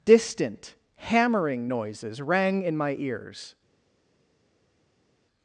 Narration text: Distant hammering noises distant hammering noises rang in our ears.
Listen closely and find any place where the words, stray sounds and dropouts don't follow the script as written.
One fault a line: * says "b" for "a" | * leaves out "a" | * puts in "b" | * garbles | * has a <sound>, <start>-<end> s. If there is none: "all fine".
* leaves out "distant hammering noises"
* says "my" for "our"